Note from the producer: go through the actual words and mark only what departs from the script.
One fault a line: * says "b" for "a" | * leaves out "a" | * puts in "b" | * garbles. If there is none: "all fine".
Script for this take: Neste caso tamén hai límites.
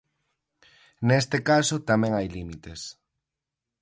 all fine